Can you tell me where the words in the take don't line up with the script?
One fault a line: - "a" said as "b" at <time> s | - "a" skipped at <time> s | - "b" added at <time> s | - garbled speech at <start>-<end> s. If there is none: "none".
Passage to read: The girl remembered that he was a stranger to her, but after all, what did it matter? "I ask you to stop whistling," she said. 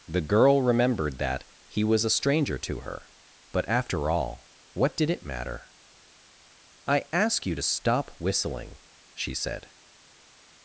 none